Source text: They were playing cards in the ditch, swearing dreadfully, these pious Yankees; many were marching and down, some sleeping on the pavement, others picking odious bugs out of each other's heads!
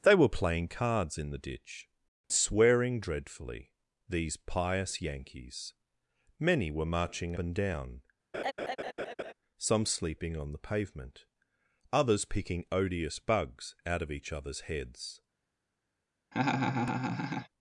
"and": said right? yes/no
yes